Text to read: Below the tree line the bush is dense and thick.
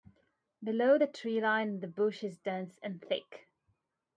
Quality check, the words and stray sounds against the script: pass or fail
pass